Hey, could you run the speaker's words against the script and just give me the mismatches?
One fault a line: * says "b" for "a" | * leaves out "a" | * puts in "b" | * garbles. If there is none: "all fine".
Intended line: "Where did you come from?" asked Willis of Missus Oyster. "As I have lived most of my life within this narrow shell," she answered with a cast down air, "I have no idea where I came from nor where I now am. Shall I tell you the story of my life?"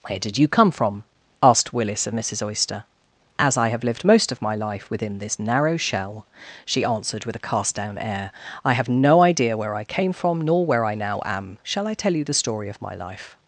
all fine